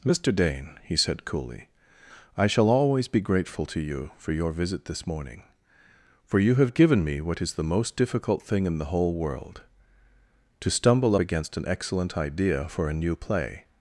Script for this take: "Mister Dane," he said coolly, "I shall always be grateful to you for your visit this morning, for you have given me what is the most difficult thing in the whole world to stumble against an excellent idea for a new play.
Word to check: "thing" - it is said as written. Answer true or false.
true